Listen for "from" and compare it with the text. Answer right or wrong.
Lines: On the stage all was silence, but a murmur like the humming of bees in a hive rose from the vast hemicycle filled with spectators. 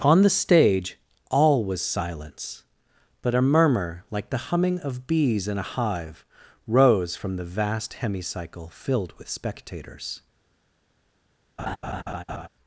right